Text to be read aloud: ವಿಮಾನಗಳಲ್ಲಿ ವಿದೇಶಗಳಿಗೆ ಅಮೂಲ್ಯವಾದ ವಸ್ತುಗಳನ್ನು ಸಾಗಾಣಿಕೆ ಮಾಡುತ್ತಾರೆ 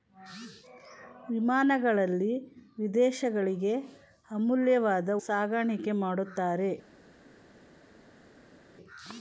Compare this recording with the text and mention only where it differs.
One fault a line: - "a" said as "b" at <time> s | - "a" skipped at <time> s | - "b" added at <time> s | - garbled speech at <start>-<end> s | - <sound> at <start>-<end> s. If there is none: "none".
- "ವಸ್ತುಗಳನ್ನು" skipped at 5.1 s